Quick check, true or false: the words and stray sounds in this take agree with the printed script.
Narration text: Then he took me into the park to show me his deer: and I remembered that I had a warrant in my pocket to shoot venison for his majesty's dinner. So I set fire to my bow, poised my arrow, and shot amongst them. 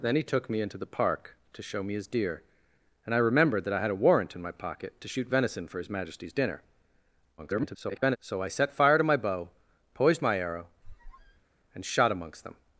false